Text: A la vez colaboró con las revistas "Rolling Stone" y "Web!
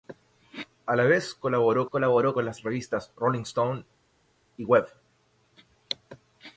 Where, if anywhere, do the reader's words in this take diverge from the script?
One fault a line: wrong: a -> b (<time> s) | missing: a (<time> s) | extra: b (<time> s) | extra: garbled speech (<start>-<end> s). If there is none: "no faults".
extra: colaboró (1.9 s)